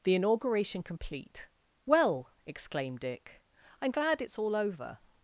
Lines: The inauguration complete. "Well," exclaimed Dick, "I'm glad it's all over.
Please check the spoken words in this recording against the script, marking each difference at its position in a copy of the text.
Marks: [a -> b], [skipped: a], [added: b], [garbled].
The inauguration complete. "Well," exclaimed Dick, "I'm glad it's all over.